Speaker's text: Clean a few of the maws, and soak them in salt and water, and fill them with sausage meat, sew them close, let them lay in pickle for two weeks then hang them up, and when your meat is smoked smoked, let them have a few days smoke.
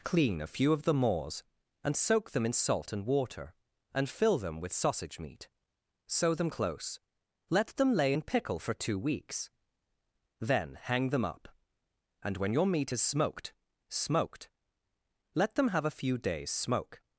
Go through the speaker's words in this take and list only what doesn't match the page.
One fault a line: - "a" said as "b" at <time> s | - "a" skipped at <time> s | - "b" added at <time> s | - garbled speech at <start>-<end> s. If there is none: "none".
none